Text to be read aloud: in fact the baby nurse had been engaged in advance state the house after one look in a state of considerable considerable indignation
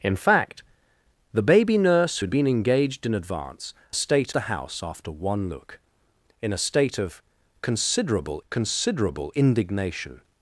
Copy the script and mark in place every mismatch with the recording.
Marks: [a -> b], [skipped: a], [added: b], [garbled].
in fact the baby nurse had been engaged in advance state the house after one look in a state of considerable considerable indignation